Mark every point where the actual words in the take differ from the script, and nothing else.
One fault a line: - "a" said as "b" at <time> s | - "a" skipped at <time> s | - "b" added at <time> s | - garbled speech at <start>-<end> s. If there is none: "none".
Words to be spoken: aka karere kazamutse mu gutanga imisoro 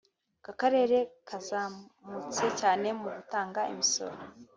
- "cyane" added at 2.6 s